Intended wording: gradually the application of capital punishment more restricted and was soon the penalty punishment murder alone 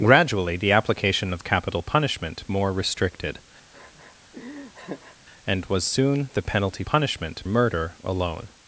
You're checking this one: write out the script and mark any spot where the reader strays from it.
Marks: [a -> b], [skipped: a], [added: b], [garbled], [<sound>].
gradually the application of capital punishment more restricted [laugh] and was soon the penalty punishment murder alone